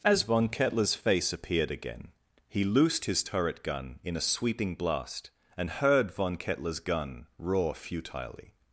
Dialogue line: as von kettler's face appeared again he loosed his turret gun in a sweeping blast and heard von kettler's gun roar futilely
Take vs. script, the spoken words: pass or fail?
pass